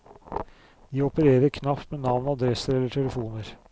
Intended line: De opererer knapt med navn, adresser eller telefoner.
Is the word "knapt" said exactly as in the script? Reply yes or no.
yes